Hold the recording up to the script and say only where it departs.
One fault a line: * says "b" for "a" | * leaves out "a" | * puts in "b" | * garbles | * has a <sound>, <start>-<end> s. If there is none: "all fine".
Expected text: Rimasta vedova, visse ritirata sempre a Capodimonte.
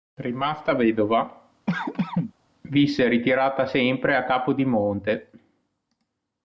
* has a cough, 1.7-2.3 s